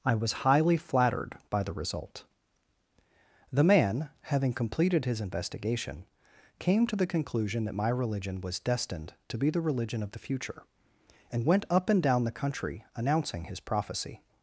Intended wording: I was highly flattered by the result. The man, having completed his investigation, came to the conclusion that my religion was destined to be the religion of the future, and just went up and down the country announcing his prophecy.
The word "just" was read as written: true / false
false